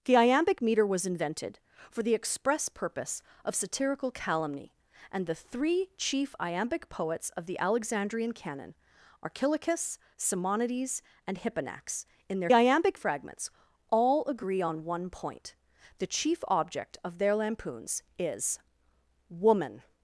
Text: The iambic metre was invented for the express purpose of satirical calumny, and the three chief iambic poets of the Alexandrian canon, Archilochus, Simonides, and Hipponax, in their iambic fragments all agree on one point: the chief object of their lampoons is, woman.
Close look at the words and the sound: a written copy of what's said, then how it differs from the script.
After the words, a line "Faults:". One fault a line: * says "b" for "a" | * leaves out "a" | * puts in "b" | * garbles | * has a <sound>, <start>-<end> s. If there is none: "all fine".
The iambic metre was invented for the express purpose of satirical calumny, and the three chief iambic poets of the Alexandrian canon, Archilochus, Simonides, and Hipponax, in their iambic fragments all agree on one point: the chief object of their lampoons is, woman.
Faults:
all fine